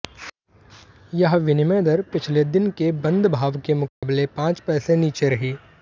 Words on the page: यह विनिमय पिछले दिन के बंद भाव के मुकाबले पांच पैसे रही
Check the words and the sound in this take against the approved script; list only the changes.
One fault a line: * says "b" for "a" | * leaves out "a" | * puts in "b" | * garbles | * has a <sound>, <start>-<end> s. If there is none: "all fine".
* puts in "दर"
* has a dropout, 3.9-4.0 s
* puts in "नीचे"